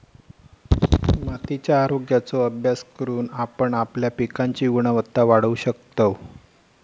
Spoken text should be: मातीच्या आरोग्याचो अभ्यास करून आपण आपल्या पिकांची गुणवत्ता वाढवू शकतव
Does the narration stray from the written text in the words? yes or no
no